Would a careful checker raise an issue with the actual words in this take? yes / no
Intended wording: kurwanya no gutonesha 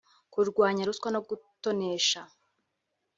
yes